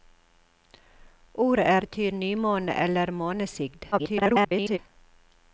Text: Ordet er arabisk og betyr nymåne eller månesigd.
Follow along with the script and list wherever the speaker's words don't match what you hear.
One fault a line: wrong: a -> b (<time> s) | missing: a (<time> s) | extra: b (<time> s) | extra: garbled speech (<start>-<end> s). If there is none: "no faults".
missing: arabisk og (1.9 s)
extra: garbled speech (3.9-4.8 s)